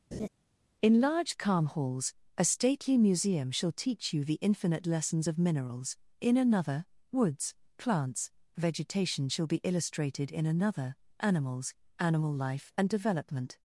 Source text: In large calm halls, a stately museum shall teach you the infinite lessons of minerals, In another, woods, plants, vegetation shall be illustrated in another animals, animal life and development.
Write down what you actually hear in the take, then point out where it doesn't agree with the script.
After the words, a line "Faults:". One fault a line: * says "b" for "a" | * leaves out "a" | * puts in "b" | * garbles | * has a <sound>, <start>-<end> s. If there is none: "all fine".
In large calm halls, a stately museum shall teach you the infinite lessons of minerals, In another, woods, plants, vegetation shall be illustrated in another animals, animal life and development.
Faults:
* has a laugh, 0.1-0.3 s